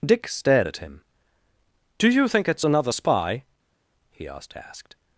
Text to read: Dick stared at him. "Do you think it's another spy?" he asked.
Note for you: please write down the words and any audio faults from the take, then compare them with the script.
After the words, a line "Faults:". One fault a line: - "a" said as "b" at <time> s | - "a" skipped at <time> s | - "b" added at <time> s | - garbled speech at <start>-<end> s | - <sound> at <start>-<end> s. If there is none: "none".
Dick stared at him. "Do you think it's another spy?" he asked asked.
Faults:
- "asked" added at 4.5 s